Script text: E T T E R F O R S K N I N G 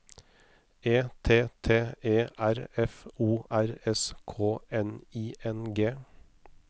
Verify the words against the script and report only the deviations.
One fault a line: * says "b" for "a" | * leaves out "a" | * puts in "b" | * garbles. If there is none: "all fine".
all fine